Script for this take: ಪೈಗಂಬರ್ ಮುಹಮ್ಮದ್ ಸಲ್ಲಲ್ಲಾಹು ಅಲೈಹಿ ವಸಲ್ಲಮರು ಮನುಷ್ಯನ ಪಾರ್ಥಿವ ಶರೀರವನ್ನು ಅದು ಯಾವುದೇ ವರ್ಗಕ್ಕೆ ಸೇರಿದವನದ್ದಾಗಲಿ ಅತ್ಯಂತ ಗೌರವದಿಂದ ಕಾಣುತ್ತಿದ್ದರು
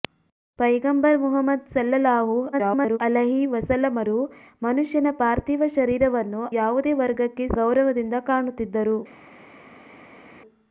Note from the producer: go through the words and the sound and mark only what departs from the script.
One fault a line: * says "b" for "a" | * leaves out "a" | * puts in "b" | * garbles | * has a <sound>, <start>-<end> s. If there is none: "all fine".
* garbles
* leaves out "ಅದು"
* leaves out "ಸೇರಿದವನದ್ದಾಗಲಿ ಅತ್ಯಂತ"